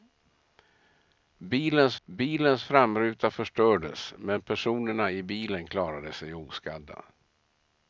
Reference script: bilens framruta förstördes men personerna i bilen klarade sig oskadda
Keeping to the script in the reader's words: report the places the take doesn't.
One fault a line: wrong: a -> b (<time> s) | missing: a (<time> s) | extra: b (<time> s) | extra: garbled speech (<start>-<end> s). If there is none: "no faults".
extra: bilens (2.0 s)